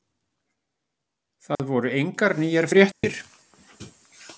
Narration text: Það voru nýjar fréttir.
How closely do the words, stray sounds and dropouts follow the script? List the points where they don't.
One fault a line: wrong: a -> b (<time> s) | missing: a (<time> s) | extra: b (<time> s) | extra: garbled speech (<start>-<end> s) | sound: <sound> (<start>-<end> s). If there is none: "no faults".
sound: dropout (1.6-1.6 s)
extra: engar (2.0 s)
sound: dropout (2.9-3.0 s)